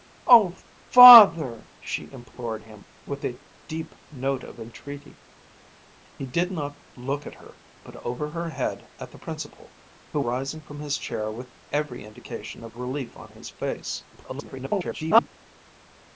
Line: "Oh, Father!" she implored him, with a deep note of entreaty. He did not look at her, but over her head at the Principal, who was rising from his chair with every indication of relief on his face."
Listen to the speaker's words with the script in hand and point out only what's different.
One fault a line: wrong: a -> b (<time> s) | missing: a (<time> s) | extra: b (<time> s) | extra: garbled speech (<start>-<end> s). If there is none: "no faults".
missing: was (10.2 s)
extra: garbled speech (14.1-15.3 s)